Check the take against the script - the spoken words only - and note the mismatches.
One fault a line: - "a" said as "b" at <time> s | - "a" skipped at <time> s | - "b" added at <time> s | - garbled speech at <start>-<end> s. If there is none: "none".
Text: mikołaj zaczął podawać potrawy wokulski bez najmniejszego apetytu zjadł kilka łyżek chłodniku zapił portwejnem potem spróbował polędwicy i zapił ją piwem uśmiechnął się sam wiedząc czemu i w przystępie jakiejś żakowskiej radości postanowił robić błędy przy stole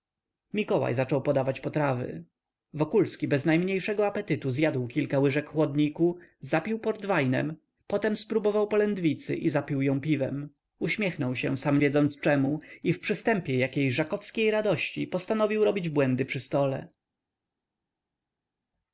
none